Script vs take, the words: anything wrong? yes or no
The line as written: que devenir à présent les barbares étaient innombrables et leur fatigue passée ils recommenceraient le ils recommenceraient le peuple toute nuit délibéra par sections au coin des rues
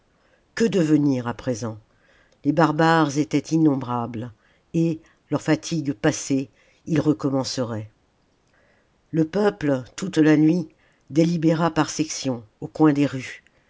yes